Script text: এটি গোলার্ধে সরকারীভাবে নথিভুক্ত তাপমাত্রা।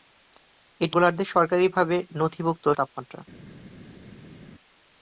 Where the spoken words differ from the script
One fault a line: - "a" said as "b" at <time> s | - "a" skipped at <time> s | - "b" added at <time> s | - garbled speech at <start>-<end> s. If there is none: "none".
none